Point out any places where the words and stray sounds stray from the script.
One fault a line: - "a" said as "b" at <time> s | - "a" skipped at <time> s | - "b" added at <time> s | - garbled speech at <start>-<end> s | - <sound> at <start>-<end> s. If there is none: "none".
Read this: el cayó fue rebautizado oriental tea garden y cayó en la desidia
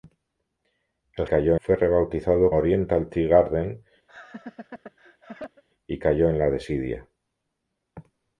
- laugh at 4.1-5.6 s